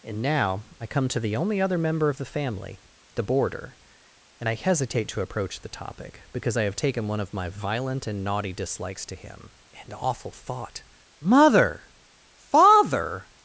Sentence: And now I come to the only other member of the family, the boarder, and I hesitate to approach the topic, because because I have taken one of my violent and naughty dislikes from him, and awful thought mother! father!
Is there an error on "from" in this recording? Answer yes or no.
yes